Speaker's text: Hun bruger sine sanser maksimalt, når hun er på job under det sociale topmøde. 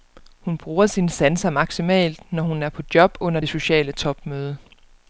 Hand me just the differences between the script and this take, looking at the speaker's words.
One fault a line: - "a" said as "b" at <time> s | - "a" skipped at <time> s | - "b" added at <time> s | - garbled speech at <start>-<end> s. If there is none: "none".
none